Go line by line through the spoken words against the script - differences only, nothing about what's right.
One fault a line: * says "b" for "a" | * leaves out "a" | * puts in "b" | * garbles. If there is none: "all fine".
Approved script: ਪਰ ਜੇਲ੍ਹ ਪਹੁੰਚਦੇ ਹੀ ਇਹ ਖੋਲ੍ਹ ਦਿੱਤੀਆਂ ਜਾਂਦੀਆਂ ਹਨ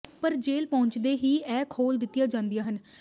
all fine